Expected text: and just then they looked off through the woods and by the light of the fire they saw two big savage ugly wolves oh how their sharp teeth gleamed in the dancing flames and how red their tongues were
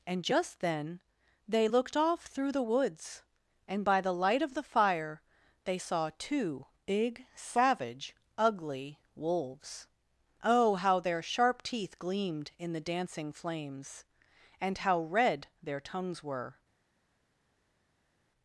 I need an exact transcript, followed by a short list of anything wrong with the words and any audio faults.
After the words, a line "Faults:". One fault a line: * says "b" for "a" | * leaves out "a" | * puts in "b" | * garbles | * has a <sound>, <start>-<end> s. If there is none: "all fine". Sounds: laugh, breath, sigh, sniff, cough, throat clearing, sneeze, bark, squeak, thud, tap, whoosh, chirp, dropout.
and just then they looked off through the woods and by the light of the fire they saw two big savage ugly wolves oh how their sharp teeth gleamed in the dancing flames and how red their tongues were
Faults:
all fine